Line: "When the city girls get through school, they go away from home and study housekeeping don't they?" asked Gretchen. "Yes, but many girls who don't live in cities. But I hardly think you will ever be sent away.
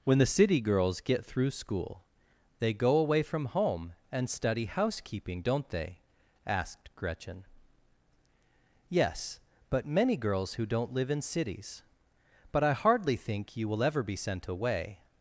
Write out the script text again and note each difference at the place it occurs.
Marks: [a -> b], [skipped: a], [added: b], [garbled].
"When the city girls get through school, they go away from home and study housekeeping don't they?" asked Gretchen. "Yes, but many girls who don't live in cities. But I hardly think you will ever be sent away.